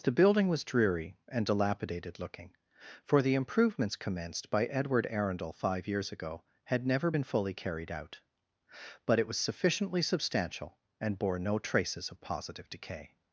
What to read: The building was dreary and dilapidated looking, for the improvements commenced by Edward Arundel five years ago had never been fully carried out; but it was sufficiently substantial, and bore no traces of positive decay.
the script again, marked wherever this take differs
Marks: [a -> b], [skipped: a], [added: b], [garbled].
The building was dreary and dilapidated looking, for the improvements commenced by Edward Arundel five years ago had never been fully carried out; but it was sufficiently substantial, and bore no traces of positive decay.